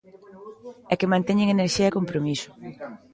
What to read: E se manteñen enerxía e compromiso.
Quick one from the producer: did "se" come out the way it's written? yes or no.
no